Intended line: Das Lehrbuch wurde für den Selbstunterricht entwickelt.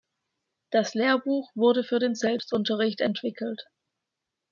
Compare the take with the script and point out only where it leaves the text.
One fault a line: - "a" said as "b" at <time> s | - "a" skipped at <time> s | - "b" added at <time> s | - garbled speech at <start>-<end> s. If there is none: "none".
none